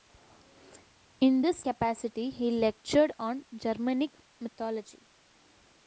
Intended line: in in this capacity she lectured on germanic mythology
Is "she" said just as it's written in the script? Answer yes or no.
no